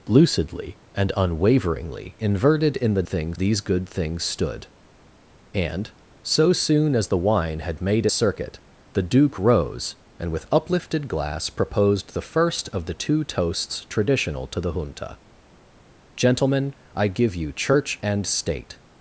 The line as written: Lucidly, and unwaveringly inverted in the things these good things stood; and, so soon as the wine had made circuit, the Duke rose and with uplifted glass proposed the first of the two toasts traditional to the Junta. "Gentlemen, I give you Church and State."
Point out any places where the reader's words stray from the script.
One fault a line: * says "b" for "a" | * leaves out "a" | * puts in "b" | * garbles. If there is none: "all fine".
all fine